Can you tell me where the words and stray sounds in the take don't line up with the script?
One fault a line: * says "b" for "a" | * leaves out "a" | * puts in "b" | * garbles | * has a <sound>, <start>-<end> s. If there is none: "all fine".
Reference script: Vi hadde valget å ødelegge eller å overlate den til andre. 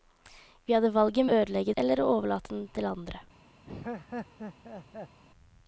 * has a laugh, 3.6-5.2 s